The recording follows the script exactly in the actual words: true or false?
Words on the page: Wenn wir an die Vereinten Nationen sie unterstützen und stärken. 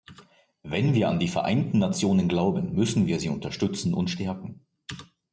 false